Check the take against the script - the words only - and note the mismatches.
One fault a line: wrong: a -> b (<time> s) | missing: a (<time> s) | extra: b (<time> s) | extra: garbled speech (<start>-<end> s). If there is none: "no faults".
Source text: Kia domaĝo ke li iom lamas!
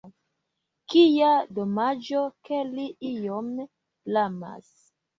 no faults